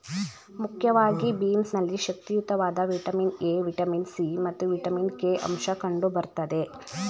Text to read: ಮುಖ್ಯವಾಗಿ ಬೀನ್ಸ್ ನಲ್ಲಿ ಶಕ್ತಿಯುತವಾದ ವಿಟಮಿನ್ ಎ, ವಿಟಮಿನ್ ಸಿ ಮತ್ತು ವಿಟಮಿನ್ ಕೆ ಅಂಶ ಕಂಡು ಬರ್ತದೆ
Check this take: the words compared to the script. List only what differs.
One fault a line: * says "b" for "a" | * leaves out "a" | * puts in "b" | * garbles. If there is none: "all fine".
all fine